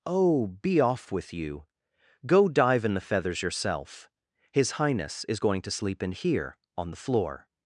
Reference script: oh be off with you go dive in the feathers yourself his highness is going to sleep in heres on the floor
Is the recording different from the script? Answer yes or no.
yes